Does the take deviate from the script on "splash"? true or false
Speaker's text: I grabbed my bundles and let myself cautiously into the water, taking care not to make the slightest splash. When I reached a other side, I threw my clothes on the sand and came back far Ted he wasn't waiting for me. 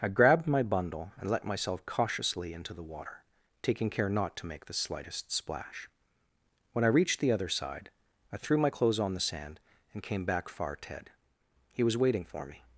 false